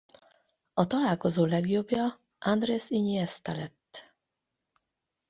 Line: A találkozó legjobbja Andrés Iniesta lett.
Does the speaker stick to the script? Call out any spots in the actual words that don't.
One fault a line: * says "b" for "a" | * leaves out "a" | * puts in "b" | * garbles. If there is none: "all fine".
all fine